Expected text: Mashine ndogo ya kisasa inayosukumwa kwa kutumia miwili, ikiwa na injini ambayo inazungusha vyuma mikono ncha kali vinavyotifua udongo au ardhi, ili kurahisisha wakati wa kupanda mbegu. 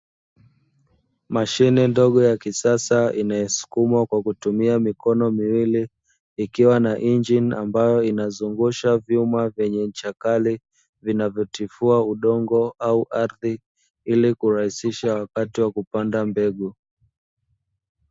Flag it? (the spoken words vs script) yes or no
yes